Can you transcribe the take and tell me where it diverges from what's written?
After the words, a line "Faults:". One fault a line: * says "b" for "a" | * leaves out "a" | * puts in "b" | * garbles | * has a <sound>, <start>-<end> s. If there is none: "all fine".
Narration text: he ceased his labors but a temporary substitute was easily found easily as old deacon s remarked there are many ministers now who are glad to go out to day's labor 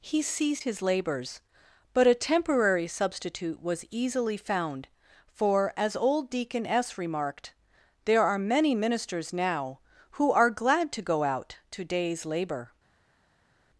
he ceased his labors but a temporary substitute was easily found for as old deacon s remarked there are many ministers now who are glad to go out to day's labor
Faults:
* says "for" for "easily"